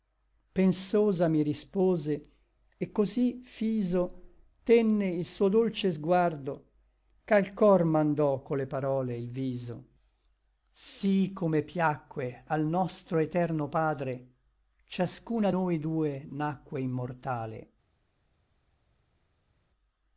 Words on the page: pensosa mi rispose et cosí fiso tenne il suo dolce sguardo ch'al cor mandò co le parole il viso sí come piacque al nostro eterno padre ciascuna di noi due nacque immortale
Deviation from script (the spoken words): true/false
true